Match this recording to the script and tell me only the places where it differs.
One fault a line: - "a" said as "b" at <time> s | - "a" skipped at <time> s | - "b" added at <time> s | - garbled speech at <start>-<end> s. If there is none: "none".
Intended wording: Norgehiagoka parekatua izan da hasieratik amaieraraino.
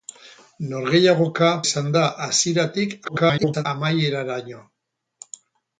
- "parekatua" skipped at 1.5 s
- garbled speech at 3.0-3.7 s